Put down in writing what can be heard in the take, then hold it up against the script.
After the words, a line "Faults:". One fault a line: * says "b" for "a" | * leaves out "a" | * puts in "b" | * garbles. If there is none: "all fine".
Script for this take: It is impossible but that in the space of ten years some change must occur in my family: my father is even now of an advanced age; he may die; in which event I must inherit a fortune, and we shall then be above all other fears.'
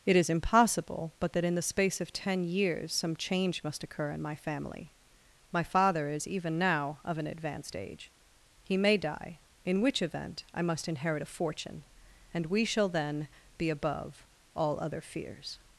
It is impossible but that in the space of ten years some change must occur in my family: my father is even now of an advanced age; he may die; in which event I must inherit a fortune, and we shall then be above all other fears.'
Faults:
all fine